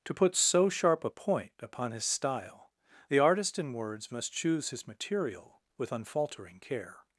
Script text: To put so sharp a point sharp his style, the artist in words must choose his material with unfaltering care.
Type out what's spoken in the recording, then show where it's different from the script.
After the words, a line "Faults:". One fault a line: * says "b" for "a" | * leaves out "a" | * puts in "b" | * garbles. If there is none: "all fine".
To put so sharp a point upon his style, the artist in words must choose his material with unfaltering care.
Faults:
* says "upon" for "sharp"